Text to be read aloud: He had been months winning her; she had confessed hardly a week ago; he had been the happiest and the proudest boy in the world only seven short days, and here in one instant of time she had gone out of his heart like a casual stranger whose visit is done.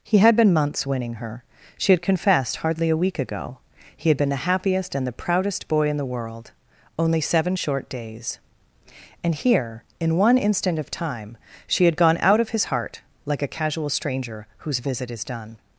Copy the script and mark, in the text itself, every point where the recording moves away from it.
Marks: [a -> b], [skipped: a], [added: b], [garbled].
He had been months winning her; she had confessed hardly a week ago; he had been the happiest and the proudest boy in the world only seven short days, and here in one instant of time she had gone out of his heart like a casual stranger whose visit is done.